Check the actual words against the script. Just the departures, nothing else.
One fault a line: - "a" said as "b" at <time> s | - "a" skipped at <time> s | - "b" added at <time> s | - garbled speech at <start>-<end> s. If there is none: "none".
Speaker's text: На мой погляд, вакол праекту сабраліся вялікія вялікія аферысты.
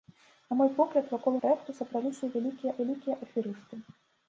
none